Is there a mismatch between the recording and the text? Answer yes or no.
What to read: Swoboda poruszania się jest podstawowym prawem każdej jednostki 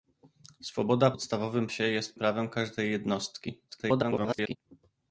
yes